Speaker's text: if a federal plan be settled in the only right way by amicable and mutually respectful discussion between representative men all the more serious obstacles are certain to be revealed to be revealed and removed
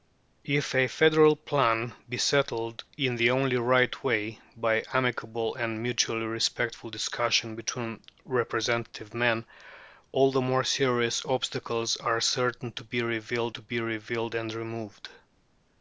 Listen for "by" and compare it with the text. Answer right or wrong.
right